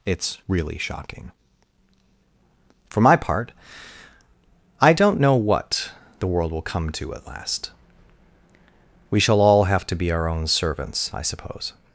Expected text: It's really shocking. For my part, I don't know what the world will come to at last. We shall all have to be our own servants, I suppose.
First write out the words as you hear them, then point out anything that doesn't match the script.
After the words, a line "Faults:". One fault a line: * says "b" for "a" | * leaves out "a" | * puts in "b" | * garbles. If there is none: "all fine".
It's really shocking. For my part, I don't know what the world will come to at last. We shall all have to be our own servants, I suppose.
Faults:
all fine